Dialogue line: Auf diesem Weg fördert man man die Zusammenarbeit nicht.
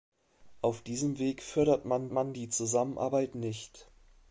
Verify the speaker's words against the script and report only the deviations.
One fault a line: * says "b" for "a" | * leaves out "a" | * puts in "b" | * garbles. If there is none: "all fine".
all fine